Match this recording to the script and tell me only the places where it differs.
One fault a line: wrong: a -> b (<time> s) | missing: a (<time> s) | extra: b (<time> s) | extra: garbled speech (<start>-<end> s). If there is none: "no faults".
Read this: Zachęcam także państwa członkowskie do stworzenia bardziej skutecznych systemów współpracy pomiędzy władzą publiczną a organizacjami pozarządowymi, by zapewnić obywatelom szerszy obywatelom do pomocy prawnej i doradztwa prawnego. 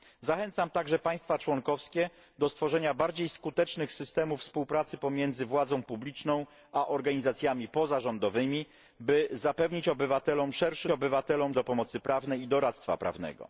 no faults